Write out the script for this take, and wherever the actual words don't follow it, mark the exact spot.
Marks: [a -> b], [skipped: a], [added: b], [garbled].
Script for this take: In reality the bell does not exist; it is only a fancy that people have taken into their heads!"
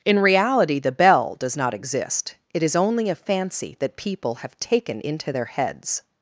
In reality the bell does not exist; it is only a fancy that people have taken into their heads!"